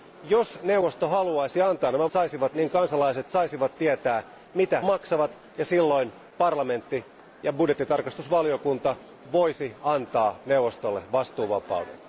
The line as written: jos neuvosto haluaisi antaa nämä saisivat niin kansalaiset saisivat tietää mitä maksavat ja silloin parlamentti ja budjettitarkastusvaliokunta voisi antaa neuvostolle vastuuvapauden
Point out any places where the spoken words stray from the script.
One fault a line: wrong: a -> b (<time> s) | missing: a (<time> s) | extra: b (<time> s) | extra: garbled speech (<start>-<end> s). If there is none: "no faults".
no faults